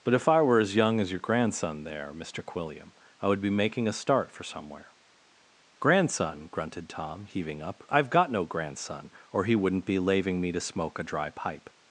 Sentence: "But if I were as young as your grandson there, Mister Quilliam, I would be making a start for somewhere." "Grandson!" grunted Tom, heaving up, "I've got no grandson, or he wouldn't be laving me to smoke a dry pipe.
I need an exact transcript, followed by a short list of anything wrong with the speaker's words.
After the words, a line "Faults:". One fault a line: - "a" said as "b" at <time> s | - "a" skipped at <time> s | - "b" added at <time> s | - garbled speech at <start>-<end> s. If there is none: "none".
"But if I were as young as your grandson there, Mister Quilliam, I would be making a start for somewhere." "Grandson!" grunted Tom, heaving up, "I've got no grandson, or he wouldn't be laving me to smoke a dry pipe.
Faults:
none